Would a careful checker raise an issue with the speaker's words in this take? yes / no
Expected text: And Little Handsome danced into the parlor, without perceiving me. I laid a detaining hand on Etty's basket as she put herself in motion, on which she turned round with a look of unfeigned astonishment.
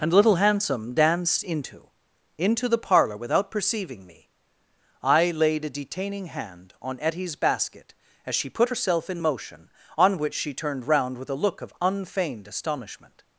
yes